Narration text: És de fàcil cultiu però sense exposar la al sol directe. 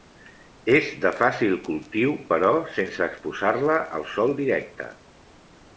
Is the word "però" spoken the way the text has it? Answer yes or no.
yes